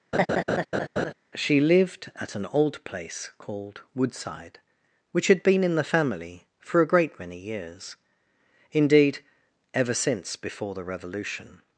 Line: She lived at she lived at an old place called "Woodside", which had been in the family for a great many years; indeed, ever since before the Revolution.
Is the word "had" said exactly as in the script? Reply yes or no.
yes